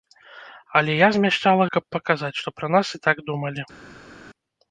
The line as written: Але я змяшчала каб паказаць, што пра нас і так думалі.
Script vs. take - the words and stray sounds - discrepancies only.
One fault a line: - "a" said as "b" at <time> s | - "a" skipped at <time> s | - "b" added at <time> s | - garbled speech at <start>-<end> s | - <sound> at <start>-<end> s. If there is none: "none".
none